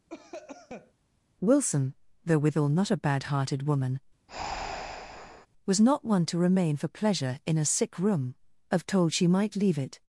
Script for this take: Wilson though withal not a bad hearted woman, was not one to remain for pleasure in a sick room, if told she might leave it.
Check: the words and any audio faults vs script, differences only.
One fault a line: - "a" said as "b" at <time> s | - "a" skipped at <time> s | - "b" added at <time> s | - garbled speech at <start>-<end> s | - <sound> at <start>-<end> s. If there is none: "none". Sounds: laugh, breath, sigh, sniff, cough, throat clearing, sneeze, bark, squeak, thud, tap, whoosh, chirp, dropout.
- cough at 0.1-0.9 s
- breath at 4.3-5.5 s
- "if" said as "of" at 8.7 s